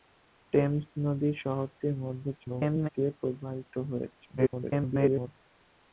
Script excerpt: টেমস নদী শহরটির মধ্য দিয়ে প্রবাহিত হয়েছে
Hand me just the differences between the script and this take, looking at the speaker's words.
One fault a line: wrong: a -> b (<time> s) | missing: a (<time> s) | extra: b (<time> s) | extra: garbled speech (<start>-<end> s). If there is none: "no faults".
extra: garbled speech (2.4-2.9 s)
extra: garbled speech (4.4-5.3 s)